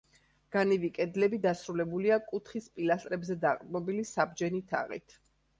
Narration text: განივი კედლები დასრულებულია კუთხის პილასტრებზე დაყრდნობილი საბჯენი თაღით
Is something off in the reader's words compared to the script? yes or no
no